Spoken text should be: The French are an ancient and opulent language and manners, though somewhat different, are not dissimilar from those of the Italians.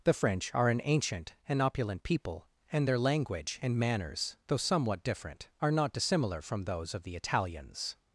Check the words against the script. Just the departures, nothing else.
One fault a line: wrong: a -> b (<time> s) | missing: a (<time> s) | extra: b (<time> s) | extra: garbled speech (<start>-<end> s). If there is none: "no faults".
extra: people and their (2.0 s)